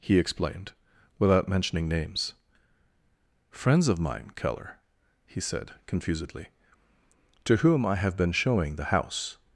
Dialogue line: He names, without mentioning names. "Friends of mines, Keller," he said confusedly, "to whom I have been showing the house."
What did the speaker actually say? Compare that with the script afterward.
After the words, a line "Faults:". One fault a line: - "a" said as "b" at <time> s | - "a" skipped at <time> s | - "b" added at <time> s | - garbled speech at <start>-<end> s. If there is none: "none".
He explained, without mentioning names. "Friends of mine, Keller," he said confusedly, "to whom I have been showing the house."
Faults:
- "names" said as "explained" at 0.2 s
- "mines" said as "mine" at 4.0 s